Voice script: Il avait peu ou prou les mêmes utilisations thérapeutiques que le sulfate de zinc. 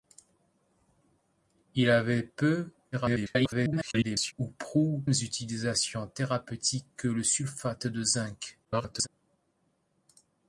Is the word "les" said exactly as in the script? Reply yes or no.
no